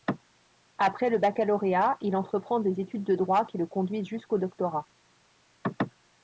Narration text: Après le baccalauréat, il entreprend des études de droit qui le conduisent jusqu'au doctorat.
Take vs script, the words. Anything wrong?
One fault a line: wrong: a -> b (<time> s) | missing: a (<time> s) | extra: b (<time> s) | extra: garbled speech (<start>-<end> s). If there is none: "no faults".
no faults